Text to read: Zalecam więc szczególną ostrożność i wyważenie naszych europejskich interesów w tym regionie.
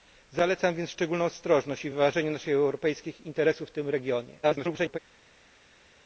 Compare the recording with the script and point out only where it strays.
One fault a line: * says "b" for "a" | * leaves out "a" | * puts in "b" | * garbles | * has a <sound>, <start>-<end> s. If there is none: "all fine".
* garbles